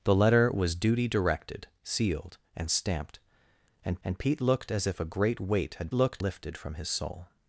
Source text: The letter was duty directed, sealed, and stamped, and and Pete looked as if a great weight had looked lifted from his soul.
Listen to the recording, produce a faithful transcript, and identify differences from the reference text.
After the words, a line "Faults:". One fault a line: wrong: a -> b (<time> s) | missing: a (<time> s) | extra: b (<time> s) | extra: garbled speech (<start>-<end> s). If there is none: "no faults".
The letter was duty directed, sealed, and stamped, and and Pete looked as if a great weight had looked lifted from his soul.
Faults:
no faults